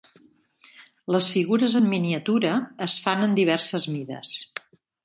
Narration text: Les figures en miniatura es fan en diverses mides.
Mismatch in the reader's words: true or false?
false